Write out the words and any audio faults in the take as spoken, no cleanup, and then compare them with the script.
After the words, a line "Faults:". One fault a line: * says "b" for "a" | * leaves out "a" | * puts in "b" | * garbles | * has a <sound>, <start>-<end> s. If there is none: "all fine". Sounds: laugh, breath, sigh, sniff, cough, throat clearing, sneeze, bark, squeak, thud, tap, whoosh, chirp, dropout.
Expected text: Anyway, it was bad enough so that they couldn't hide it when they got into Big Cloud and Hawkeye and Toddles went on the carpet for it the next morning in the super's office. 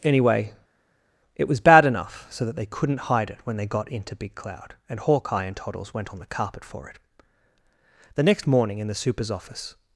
Anyway, it was bad enough so that they couldn't hide it when they got into Big Cloud and Hawkeye and Toddles went on the carpet for it the next morning in the super's office.
Faults:
all fine